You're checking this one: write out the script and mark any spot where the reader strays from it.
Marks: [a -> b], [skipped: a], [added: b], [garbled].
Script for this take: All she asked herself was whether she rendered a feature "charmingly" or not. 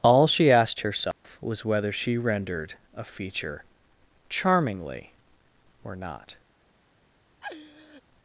All she asked herself was whether she rendered a feature "charmingly" or not.